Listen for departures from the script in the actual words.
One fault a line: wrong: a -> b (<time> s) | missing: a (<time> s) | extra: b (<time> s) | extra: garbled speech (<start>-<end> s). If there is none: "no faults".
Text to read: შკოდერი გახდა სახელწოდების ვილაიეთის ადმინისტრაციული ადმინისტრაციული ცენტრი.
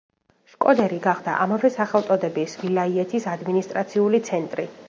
extra: ამავე (1.4 s)
missing: ადმინისტრაციული (4.3 s)